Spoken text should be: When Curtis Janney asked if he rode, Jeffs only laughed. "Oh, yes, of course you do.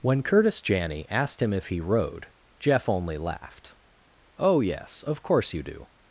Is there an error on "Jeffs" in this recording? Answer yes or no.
yes